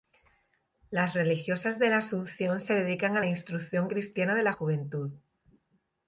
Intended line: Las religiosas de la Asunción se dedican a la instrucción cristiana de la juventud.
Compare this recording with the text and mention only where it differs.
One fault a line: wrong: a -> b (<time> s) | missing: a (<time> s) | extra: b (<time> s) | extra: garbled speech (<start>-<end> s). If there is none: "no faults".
no faults